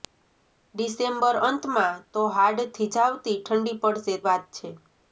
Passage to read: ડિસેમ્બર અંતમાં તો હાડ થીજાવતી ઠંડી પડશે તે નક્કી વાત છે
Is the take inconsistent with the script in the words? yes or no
yes